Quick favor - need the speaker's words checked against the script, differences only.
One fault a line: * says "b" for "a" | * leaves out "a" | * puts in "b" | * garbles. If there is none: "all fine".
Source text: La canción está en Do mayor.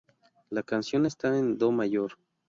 all fine